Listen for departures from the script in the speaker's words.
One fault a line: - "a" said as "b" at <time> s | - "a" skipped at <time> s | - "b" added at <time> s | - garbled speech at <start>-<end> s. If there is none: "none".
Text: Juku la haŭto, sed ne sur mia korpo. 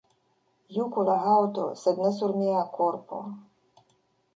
none